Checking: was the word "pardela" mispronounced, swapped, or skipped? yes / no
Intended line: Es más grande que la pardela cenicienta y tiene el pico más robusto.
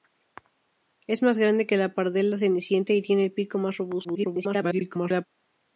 no